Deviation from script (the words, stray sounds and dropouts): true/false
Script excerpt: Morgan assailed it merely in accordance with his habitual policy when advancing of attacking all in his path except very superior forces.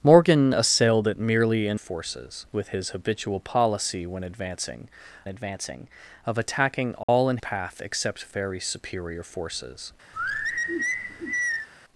true